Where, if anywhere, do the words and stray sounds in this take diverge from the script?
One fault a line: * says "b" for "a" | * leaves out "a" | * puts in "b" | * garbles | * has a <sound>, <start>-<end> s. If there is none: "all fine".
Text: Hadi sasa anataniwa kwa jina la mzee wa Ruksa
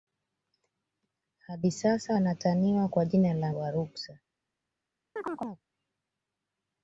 * leaves out "mzee"
* has a chirp, 5.2-5.6 s